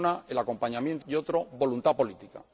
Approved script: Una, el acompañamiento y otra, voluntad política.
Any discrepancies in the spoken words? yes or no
no